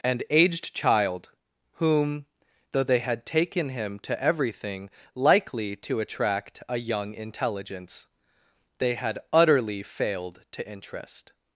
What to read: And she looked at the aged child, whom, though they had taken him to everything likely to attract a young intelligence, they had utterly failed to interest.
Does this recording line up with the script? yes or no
no